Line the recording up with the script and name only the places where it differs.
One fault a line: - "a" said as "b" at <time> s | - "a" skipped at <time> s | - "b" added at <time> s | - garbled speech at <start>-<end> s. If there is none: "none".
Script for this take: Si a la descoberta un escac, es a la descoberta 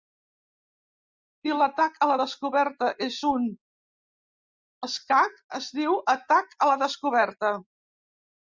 - "l'atac" added at 1.6 s
- "és" added at 3.1 s
- "diu atac" added at 5.8 s